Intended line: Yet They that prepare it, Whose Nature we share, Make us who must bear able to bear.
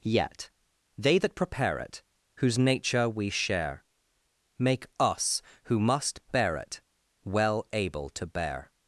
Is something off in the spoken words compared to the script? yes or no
yes